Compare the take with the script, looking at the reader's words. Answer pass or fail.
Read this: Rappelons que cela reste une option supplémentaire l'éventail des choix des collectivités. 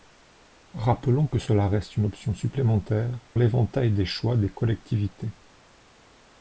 pass